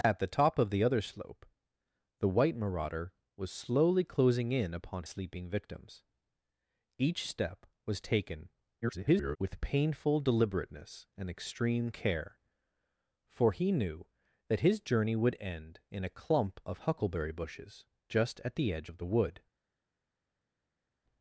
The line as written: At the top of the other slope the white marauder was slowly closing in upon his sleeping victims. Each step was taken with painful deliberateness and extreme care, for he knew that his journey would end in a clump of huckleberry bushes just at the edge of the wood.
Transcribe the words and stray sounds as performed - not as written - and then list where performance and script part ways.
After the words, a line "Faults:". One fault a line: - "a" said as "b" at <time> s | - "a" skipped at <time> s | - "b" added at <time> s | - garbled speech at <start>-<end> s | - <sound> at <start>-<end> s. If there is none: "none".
At the top of the other slope the white marauder was slowly closing in upon sleeping victims. Each step was taken [garbled] with painful deliberateness and extreme care, for he knew that his journey would end in a clump of huckleberry bushes just at the edge of the wood.
Faults:
- "his" skipped at 5.0 s
- garbled speech at 8.8-9.4 s